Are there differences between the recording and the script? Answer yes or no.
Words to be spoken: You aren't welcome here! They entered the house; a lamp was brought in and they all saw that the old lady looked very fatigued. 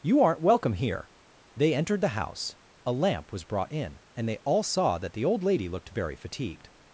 no